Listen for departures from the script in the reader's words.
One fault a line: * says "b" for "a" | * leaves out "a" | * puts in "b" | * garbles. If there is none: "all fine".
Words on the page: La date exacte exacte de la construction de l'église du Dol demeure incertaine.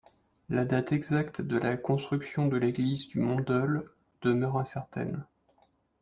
* leaves out "exacte"
* puts in "Mont"